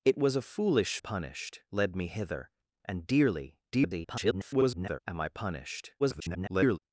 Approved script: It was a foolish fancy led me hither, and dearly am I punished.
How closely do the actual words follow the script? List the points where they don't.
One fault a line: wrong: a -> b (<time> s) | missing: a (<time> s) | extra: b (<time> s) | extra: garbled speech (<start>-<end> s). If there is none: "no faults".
wrong: fancy -> punished (1.0 s)
extra: garbled speech (3.7-5.0 s)
extra: garbled speech (6.0-6.8 s)